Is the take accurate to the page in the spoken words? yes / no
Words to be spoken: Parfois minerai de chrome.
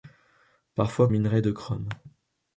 yes